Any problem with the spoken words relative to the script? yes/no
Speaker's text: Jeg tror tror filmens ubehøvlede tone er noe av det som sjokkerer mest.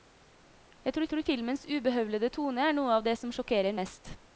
no